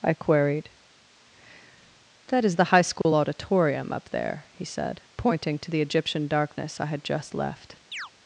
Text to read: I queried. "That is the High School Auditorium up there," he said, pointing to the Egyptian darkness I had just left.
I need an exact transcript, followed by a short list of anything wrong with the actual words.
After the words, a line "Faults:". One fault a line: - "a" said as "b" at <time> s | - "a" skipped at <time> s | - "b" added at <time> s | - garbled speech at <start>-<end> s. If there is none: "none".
I queried. "That is the High School Auditorium up there," he said, pointing to the Egyptian darkness I had just left.
Faults:
none